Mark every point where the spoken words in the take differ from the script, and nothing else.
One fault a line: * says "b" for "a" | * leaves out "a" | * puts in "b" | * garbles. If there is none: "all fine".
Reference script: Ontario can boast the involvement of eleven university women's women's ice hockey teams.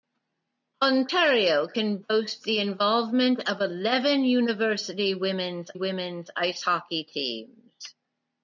all fine